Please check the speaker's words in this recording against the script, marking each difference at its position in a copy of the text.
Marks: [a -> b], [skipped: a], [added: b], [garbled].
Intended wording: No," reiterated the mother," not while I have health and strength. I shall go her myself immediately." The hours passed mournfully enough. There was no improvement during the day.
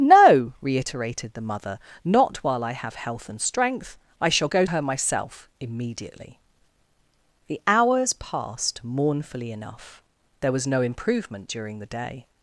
No," reiterated the mother," not while I have health and strength. I shall go her myself immediately." The hours passed mournfully enough. There was no improvement during the day.